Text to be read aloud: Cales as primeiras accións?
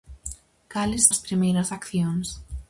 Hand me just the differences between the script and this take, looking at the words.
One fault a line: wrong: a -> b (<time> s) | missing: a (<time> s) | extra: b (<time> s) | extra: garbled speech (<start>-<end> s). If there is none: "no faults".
no faults